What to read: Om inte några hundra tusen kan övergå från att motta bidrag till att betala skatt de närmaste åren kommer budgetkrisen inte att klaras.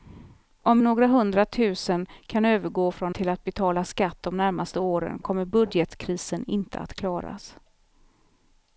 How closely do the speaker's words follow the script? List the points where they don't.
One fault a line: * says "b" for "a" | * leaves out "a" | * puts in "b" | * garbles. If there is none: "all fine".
* leaves out "inte"
* leaves out "att motta bidrag"